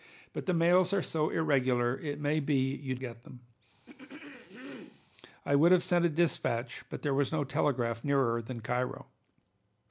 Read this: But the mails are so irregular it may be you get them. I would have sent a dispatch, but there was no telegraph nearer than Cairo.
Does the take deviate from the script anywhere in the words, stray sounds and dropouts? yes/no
yes